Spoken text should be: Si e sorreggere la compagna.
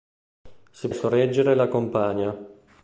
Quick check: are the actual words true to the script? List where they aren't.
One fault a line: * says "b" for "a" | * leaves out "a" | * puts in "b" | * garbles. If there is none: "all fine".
all fine